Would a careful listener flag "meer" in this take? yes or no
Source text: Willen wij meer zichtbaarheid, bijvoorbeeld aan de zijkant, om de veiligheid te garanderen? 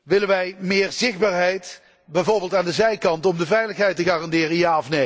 no